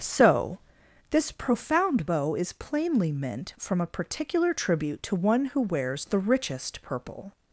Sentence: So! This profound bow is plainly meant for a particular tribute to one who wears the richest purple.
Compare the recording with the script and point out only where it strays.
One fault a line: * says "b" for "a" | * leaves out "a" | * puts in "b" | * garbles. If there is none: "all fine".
* says "from" for "for"